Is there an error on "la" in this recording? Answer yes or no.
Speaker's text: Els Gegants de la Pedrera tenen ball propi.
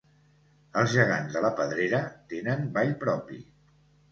no